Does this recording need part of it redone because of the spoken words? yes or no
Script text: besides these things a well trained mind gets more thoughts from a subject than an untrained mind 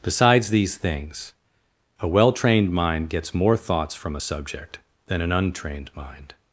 no